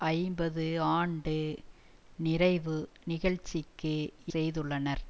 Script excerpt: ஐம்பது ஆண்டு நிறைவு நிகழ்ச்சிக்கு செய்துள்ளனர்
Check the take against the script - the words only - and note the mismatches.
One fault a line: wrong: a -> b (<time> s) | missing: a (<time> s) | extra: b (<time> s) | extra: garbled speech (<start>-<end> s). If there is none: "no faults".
no faults